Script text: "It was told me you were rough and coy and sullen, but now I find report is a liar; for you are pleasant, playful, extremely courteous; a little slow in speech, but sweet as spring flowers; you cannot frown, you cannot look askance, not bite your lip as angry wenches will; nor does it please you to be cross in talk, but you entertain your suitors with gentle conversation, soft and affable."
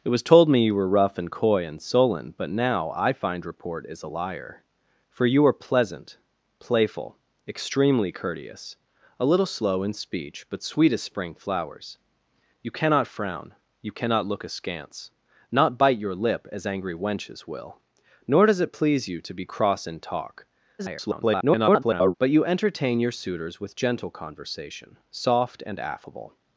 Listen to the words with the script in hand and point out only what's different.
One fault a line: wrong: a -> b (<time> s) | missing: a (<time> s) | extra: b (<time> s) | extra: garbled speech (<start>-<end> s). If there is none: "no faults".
extra: garbled speech (20.8-22.1 s)